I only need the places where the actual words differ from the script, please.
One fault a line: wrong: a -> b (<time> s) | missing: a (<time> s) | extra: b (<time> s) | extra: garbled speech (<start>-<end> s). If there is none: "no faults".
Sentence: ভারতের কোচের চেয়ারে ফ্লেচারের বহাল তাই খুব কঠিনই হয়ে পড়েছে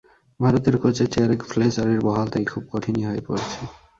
no faults